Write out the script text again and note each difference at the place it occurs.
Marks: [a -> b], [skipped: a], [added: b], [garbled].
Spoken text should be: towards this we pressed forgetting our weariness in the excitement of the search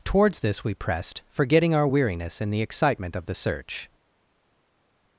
towards this we pressed forgetting our weariness in the excitement of the search